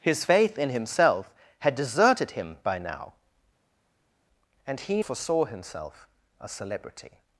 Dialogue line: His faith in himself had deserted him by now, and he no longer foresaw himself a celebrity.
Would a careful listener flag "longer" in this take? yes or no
yes